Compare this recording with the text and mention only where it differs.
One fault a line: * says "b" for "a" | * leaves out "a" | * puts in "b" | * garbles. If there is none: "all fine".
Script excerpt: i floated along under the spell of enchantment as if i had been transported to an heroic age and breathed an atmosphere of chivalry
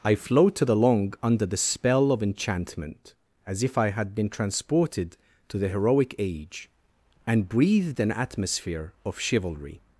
* says "the" for "an"